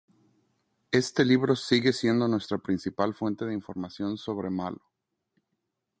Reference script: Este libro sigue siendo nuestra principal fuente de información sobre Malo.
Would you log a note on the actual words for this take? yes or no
no